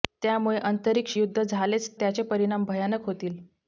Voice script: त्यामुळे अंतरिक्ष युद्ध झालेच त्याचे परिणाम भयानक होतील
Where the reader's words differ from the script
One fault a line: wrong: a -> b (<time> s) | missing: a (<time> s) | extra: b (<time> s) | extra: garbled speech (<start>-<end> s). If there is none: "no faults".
no faults